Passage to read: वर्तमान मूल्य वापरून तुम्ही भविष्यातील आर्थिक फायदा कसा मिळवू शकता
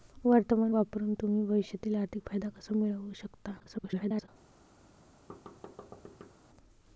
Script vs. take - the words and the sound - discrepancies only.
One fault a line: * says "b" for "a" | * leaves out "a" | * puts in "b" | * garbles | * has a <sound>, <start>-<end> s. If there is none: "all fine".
* leaves out "मूल्य"
* garbles
* has a thud, 5.3-6.3 s